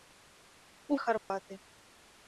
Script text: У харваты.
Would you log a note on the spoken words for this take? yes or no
no